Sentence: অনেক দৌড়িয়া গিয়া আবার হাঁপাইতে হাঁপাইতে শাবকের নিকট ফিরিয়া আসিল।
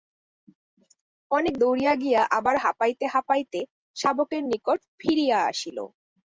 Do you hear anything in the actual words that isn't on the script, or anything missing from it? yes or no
no